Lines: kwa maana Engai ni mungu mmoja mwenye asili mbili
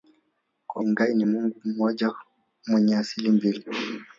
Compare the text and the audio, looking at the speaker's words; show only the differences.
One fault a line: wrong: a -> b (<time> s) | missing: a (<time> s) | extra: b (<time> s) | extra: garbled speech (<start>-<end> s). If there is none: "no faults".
missing: maana (0.8 s)